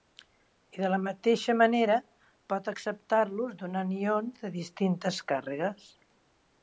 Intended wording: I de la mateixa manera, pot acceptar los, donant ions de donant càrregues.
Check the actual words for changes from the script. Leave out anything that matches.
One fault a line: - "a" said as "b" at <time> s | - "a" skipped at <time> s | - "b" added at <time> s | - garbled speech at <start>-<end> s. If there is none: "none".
- "donant" said as "distintes" at 4.6 s